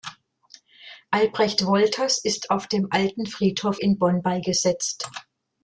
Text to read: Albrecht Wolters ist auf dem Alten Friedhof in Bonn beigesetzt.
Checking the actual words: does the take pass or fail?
pass